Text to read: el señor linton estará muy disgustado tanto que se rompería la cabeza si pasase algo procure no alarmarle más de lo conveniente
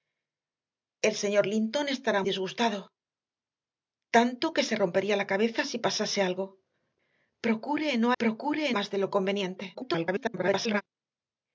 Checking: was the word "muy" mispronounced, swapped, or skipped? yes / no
yes